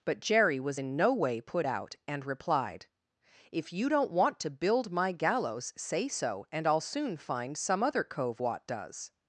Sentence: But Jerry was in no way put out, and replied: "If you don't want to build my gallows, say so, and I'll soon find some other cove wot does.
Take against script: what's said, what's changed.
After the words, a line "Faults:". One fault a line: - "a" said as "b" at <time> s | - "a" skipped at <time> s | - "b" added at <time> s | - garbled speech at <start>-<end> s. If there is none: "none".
But Jerry was in no way put out, and replied: "If you don't want to build my gallows, say so, and I'll soon find some other cove wot does.
Faults:
none